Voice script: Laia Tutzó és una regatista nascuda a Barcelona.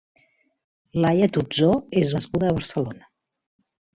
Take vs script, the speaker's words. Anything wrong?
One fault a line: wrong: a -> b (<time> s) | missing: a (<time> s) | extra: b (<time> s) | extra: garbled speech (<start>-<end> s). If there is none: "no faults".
missing: una regatista (2.1 s)